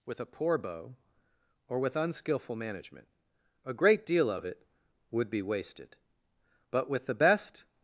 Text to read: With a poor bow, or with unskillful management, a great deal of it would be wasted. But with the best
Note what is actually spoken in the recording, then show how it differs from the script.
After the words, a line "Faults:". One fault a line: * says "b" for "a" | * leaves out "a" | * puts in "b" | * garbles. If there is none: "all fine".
With a poor bow, or with unskillful management, a great deal of it would be wasted. But with the best
Faults:
all fine